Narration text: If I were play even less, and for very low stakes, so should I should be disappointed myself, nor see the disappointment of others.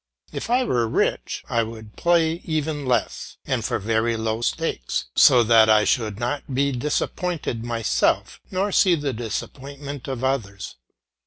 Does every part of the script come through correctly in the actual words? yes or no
no